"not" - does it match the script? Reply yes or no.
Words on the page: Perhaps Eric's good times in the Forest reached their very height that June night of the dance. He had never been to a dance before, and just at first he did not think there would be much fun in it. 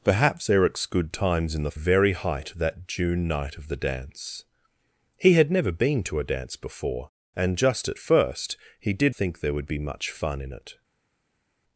no